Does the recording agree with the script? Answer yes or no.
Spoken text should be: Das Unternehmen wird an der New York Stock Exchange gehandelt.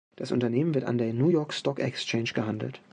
yes